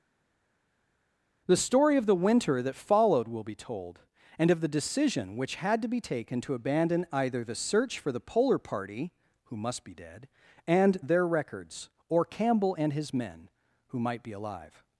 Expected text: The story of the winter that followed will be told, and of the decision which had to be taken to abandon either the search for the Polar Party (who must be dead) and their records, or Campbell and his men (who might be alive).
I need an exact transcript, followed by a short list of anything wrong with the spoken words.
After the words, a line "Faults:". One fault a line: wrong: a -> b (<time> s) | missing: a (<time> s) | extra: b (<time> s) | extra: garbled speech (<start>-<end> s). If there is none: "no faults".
The story of the winter that followed will be told, and of the decision which had to be taken to abandon either the search for the Polar Party (who must be dead) and their records, or Campbell and his men (who might be alive).
Faults:
no faults